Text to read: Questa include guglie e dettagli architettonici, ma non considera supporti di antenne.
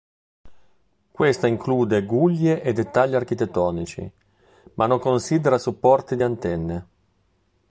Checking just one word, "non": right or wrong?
right